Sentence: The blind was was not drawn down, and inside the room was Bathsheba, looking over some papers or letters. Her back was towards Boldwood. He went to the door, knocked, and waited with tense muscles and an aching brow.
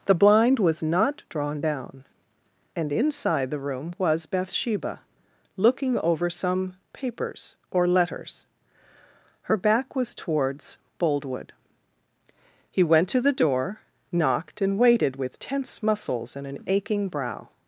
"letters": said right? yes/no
yes